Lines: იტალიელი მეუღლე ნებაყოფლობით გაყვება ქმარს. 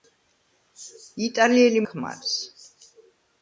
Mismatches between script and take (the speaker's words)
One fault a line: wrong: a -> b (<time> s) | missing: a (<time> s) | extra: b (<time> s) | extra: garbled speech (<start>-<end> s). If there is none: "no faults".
missing: მეუღლე ნებაყოფლობით გაყვება (1.8 s)